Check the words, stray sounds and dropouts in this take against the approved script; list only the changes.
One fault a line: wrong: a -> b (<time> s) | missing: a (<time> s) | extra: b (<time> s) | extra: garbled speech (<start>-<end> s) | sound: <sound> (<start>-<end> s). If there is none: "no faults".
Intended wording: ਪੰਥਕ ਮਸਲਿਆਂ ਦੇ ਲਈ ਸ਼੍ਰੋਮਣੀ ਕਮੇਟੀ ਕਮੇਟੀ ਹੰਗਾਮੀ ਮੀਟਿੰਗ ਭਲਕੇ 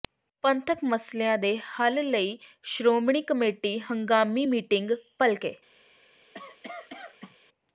extra: ਹੱਲ (1.7 s)
missing: ਕਮੇਟੀ (3.8 s)
sound: cough (6.3-7.4 s)